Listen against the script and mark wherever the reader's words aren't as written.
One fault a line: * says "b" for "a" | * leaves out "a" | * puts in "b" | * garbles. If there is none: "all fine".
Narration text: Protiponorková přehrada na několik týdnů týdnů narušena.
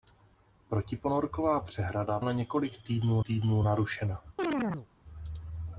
all fine